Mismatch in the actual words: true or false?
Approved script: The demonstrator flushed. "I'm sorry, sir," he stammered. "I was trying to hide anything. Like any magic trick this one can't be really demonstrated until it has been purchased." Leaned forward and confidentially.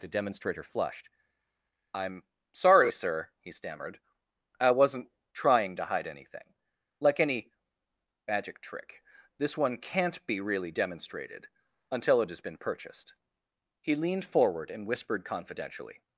true